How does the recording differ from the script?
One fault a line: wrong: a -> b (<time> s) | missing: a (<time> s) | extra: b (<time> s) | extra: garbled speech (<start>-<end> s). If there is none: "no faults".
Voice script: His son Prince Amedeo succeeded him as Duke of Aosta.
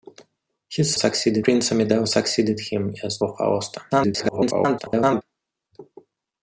wrong: son -> succeeded (1.0 s)
missing: Duke (3.2 s)
extra: garbled speech (3.9-5.2 s)